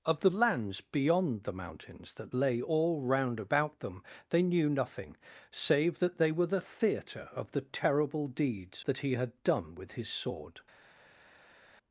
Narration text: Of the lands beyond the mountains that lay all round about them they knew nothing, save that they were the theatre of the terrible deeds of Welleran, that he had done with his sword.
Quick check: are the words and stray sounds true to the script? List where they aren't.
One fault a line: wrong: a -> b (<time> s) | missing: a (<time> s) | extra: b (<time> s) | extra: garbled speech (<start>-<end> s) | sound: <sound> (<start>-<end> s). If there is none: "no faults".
missing: of Welleran (8.8 s)